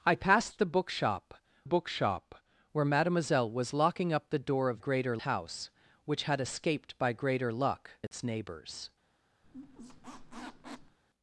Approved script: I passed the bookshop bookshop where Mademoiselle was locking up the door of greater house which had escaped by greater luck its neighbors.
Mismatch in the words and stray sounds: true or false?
true